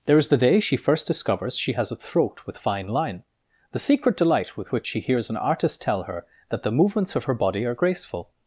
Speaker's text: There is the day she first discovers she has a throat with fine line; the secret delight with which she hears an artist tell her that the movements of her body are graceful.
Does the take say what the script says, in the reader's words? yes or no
yes